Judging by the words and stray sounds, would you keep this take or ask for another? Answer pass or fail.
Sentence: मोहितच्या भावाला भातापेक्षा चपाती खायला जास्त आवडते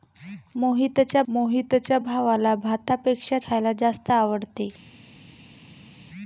fail